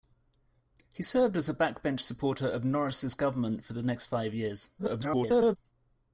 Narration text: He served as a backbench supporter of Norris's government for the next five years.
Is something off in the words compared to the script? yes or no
yes